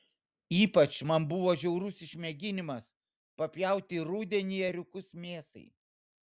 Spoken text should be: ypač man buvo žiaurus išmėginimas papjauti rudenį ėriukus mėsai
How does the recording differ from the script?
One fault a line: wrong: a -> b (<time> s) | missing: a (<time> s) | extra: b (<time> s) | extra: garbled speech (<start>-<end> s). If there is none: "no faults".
no faults